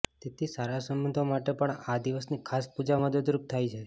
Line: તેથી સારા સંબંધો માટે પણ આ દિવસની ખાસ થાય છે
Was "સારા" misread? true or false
false